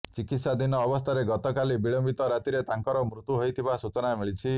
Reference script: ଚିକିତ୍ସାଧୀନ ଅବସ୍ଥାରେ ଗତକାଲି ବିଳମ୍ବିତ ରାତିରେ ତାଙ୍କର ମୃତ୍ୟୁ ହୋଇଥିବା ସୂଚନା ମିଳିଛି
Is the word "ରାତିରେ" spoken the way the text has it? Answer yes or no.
yes